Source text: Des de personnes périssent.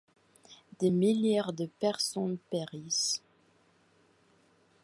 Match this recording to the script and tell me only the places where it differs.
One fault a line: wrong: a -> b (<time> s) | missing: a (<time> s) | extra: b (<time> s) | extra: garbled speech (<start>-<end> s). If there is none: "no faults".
extra: milliers (0.9 s)